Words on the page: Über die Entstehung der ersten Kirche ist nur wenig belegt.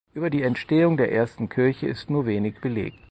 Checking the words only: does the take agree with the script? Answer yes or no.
yes